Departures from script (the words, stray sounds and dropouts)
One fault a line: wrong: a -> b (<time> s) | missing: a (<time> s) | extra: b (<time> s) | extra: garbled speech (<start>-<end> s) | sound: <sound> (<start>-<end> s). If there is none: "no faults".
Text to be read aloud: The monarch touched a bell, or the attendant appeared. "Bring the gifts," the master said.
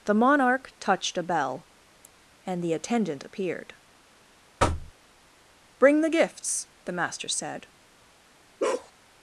wrong: or -> and (2.4 s)
sound: thud (4.6-4.9 s)
sound: bark (8.6-8.9 s)